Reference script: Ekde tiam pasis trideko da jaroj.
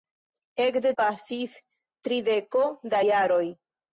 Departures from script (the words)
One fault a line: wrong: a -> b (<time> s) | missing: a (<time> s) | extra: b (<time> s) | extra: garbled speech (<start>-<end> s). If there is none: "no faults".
missing: tiam (0.9 s)